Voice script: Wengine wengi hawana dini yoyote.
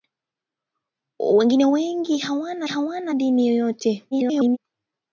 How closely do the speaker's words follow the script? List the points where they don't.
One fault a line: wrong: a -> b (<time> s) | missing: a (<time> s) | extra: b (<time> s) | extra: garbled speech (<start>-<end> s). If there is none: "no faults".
extra: hawana (2.6 s)
extra: garbled speech (4.1-4.6 s)